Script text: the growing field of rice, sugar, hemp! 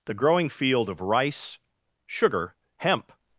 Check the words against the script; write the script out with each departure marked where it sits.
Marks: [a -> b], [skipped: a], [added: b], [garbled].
the growing field of rice, sugar, hemp!